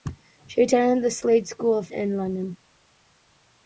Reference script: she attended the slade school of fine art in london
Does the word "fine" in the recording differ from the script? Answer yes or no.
yes